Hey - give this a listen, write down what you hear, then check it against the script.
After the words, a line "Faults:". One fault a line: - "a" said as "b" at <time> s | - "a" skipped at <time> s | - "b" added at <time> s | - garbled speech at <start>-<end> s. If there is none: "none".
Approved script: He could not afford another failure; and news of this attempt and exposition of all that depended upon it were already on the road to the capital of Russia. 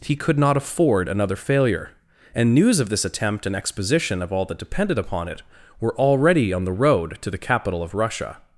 He could not afford another failure; and news of this attempt and exposition of all that depended upon it were already on the road to the capital of Russia.
Faults:
none